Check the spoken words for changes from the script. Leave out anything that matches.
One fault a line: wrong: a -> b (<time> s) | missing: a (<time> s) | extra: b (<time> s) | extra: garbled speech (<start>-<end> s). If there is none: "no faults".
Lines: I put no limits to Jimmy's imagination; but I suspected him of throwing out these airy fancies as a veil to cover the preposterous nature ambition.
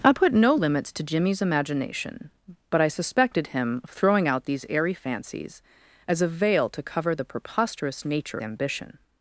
no faults